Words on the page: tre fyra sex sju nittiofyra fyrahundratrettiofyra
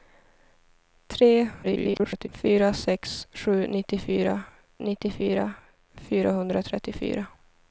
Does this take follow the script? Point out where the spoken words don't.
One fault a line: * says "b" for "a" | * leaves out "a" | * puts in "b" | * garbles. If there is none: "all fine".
* garbles
* puts in "nittiofyra"